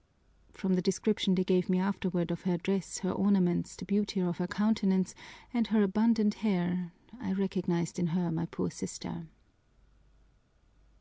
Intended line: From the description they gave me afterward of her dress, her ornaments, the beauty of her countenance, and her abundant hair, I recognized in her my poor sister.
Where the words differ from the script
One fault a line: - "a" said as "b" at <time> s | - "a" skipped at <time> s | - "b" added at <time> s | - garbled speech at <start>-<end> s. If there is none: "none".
none